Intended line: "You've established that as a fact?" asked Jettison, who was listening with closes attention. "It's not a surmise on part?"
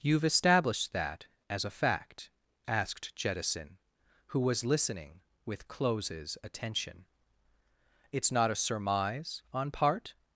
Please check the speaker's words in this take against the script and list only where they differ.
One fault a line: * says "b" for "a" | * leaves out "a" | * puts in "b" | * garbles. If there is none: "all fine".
all fine